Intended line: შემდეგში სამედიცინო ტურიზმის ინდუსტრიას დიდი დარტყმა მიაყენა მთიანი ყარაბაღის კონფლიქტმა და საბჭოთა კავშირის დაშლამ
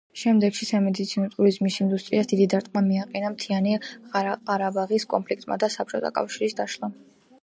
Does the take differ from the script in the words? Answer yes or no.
no